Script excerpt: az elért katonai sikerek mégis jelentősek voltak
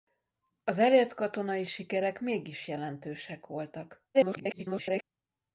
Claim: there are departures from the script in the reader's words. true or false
true